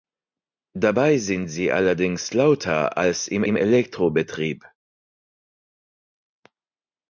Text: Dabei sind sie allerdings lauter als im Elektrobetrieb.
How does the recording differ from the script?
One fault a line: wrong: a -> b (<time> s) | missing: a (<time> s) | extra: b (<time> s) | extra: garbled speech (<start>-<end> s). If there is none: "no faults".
extra: im (3.4 s)